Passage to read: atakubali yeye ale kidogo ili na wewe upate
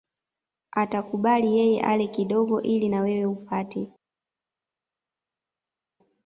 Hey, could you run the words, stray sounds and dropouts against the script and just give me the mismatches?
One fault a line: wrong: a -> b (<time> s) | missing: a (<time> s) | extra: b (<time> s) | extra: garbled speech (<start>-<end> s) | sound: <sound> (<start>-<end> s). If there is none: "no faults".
no faults